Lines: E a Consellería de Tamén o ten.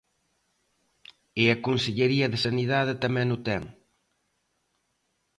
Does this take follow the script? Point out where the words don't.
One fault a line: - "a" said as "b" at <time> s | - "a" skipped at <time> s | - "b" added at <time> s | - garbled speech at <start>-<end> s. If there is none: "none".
- "Sanidade" added at 2.4 s